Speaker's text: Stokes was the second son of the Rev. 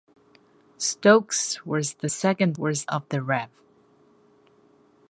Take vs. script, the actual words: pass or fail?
fail